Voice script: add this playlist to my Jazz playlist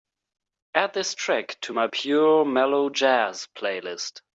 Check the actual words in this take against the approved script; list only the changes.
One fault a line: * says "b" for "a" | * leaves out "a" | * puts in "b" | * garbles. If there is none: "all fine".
* says "track" for "playlist"
* puts in "Pure Mellow"